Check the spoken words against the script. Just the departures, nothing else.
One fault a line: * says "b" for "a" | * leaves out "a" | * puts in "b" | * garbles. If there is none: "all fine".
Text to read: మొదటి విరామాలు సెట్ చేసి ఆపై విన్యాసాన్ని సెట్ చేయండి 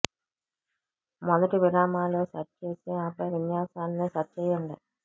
all fine